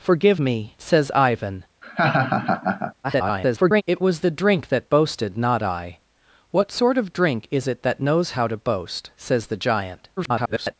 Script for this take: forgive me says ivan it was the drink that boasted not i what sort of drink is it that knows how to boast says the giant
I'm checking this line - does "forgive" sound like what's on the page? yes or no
yes